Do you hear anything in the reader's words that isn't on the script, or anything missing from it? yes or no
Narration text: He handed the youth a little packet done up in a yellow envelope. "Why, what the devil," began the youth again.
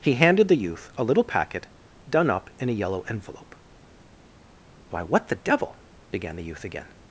no